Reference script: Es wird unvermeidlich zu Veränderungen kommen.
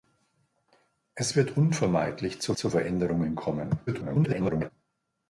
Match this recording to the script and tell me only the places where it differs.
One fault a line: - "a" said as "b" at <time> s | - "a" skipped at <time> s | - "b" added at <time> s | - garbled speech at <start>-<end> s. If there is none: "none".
- "zu" added at 2.5 s
- garbled speech at 3.9-4.7 s